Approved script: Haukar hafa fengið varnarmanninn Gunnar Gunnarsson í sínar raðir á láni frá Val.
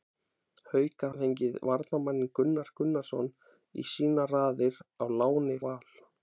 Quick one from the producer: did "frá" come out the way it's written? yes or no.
no